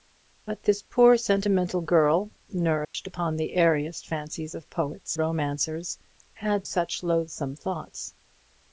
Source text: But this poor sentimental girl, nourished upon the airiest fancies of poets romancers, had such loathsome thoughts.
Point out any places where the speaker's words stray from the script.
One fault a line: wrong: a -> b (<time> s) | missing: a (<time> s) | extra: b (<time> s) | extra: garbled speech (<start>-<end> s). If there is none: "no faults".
no faults